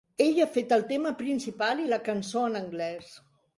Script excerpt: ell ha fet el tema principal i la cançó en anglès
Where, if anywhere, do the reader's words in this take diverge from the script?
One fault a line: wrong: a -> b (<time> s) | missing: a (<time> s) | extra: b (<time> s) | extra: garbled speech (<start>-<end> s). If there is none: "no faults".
no faults